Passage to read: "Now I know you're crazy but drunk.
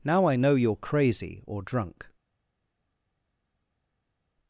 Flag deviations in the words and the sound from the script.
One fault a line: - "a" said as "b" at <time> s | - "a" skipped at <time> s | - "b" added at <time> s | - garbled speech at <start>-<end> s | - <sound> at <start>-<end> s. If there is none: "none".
- "but" said as "or" at 1.4 s